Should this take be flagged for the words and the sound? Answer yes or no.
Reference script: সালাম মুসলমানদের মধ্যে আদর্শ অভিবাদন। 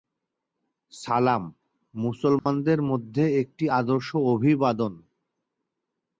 yes